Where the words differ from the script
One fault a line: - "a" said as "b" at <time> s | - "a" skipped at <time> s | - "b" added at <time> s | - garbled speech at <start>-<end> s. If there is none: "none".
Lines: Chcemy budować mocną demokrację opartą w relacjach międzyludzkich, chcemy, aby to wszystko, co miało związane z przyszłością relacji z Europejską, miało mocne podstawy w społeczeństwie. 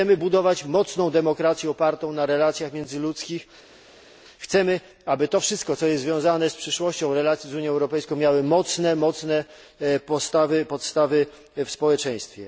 - "w" said as "na" at 2.1 s
- "miało" said as "jest" at 5.9 s
- "Unią" added at 7.5 s